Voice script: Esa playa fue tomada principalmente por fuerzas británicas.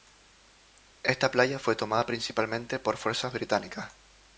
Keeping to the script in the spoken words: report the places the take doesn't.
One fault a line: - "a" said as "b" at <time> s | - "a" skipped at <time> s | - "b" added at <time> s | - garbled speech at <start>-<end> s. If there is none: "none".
- "Esa" said as "Esta" at 1.0 s